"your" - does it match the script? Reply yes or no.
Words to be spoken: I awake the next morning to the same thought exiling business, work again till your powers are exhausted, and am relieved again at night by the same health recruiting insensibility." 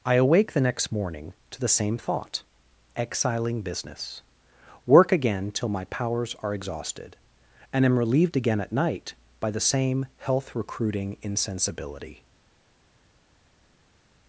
no